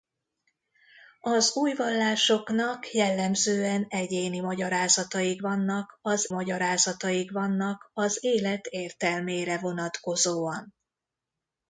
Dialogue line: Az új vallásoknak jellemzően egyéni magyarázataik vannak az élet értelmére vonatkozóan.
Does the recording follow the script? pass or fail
fail